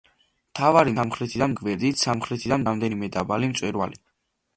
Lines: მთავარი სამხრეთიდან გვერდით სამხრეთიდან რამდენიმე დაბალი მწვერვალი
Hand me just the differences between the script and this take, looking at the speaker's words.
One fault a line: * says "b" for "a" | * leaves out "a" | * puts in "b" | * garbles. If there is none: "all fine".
all fine